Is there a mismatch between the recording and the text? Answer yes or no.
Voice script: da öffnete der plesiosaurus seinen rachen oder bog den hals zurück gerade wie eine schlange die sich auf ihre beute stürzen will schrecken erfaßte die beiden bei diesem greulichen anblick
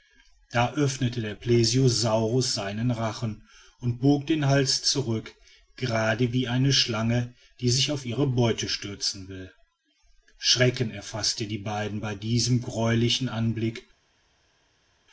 yes